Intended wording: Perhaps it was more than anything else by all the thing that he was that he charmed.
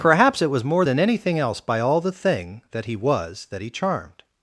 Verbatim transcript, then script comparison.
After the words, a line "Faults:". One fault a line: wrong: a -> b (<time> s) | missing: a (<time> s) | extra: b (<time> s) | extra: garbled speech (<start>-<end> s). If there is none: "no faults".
Perhaps it was more than anything else by all the thing that he was that he charmed.
Faults:
no faults